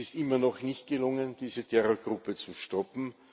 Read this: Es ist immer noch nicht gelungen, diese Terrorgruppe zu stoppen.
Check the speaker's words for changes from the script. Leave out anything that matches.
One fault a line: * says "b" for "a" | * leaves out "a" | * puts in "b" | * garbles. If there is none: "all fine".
all fine